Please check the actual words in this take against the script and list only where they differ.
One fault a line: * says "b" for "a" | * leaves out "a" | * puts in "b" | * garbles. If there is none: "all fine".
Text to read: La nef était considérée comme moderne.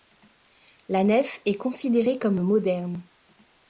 * says "est" for "était"